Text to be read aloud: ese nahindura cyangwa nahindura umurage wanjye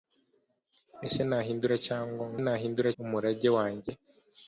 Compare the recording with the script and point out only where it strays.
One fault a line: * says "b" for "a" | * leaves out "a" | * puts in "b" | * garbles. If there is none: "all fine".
all fine